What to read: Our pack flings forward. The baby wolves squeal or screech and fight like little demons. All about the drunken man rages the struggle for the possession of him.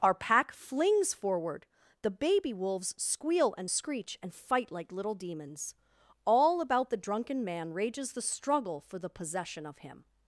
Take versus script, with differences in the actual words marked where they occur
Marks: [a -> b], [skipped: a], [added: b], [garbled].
Our pack flings forward. The baby wolves squeal [or -> and] screech and fight like little demons. All about the drunken man rages the struggle for the possession of him.